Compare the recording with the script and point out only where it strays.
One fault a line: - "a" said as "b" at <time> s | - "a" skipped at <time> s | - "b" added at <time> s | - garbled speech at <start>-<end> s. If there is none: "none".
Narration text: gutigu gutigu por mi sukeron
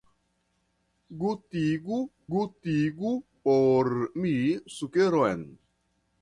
none